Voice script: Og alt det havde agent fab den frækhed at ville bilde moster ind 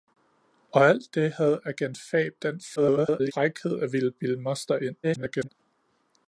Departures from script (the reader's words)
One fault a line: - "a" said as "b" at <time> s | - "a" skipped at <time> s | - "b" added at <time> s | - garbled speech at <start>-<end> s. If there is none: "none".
- garbled speech at 2.8-3.3 s
- garbled speech at 5.0-5.5 s